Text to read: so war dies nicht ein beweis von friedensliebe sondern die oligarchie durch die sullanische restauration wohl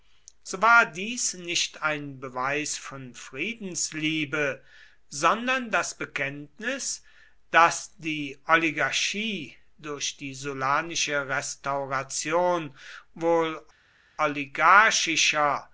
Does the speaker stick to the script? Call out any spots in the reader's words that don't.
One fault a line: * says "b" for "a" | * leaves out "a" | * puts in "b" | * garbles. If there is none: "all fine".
* puts in "das bekenntnis daß"